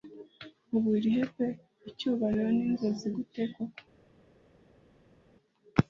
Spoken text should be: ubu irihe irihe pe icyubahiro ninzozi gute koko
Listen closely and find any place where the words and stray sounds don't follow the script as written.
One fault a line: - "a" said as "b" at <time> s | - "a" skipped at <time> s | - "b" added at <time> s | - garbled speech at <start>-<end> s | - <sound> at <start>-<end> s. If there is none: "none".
- "irihe" skipped at 1.2 s